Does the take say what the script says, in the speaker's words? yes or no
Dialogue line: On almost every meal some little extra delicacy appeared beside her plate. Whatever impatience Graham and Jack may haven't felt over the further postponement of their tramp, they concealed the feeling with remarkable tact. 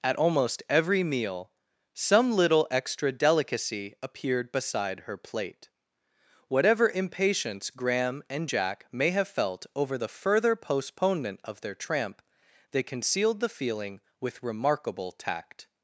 no